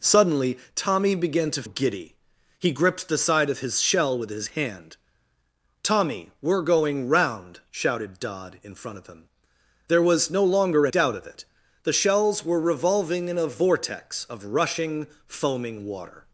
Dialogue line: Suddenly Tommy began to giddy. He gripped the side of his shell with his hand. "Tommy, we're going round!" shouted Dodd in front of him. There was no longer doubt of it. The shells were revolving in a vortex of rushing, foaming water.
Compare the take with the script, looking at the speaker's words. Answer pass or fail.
pass